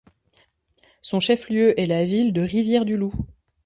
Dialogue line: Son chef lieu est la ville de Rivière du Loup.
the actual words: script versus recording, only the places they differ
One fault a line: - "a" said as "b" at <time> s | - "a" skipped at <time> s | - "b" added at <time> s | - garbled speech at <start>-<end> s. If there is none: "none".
none